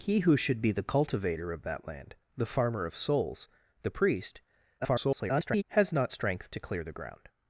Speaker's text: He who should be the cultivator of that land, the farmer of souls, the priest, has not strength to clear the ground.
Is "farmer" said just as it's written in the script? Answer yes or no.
yes